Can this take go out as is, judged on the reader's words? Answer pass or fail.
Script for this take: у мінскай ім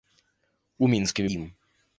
pass